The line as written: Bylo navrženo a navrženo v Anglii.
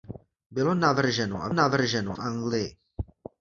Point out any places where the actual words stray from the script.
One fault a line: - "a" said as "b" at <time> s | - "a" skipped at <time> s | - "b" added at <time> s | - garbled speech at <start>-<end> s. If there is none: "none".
none